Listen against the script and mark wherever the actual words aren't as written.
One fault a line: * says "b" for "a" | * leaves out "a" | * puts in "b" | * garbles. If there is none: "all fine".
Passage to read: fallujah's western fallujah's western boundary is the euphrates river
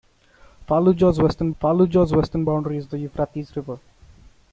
all fine